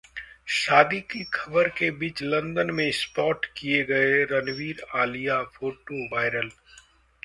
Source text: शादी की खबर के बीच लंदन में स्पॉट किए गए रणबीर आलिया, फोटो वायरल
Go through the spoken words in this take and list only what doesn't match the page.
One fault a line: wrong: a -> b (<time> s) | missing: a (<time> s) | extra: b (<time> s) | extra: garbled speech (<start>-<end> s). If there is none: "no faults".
no faults